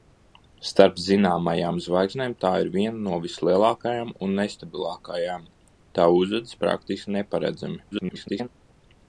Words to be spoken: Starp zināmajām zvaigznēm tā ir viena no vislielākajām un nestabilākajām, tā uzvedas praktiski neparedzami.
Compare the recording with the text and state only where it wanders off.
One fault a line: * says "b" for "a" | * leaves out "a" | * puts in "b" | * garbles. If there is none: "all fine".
* garbles